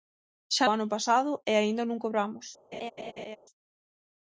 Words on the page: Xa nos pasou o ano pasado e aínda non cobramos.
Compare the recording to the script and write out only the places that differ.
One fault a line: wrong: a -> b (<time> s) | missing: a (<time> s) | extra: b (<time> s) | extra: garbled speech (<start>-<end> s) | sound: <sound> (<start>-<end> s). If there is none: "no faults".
missing: nos pasou (0.7 s)
sound: laugh (2.7-3.4 s)